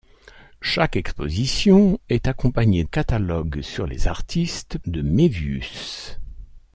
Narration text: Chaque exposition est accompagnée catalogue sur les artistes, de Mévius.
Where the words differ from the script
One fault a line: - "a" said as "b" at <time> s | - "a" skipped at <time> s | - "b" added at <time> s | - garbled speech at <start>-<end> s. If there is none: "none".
none